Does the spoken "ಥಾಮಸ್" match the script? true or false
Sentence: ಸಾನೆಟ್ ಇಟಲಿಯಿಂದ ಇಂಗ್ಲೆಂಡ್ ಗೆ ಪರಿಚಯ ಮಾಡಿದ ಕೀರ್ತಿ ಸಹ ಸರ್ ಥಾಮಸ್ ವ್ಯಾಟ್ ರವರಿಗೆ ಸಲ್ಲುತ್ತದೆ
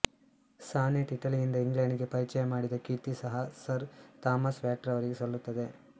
true